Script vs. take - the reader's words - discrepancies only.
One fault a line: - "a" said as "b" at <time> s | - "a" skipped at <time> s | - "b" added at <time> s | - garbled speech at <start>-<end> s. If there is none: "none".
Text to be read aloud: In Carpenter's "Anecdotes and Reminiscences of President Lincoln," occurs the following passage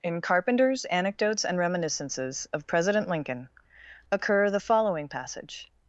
- "occurs" said as "occur" at 4.1 s